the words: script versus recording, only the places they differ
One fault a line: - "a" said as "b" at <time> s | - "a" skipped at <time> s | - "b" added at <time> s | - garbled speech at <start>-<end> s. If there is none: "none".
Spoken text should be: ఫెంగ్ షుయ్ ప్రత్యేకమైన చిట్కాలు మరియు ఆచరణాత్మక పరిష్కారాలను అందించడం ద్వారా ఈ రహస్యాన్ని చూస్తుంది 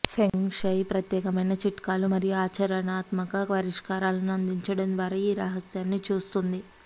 none